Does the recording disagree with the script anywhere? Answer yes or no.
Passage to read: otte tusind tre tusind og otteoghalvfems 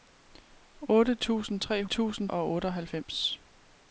no